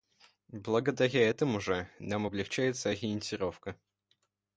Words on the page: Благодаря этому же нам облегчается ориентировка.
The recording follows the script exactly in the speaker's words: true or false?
true